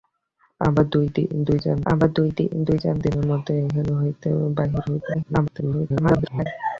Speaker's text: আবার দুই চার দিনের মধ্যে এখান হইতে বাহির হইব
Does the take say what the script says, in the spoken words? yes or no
no